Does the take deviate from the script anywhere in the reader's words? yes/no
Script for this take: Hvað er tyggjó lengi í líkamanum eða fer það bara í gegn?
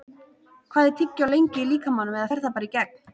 no